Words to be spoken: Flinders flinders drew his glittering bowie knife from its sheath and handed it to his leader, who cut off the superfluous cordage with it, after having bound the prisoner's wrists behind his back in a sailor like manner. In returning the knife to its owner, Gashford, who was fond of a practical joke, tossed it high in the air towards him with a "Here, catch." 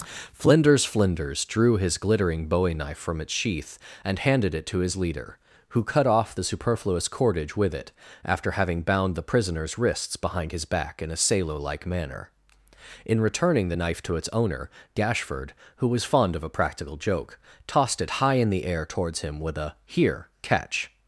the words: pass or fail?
pass